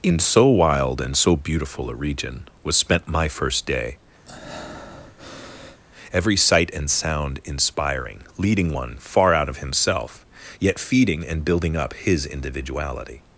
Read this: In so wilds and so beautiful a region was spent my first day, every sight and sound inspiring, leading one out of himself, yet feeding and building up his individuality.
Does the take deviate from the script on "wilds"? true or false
true